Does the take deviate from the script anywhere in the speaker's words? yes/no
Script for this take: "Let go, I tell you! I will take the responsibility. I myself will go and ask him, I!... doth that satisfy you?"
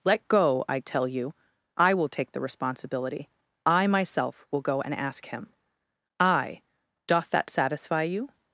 no